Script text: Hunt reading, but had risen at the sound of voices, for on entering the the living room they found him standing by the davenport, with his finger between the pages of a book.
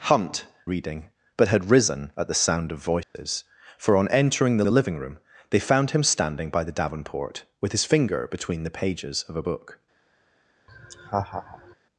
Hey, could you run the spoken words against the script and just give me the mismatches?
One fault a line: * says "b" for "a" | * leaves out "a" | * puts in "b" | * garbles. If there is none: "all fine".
all fine